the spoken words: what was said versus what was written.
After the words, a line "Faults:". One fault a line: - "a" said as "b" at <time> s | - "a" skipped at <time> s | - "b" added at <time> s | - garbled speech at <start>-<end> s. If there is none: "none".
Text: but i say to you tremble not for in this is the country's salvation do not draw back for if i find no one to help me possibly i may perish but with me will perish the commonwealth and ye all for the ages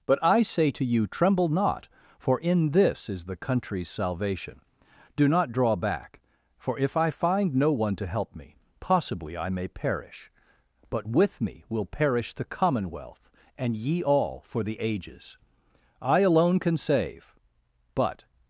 but i say to you tremble not for in this is the country's salvation do not draw back for if i find no one to help me possibly i may perish but with me will perish the commonwealth and ye all for the ages i alone can save but
Faults:
- "i alone can save but" added at 16.0 s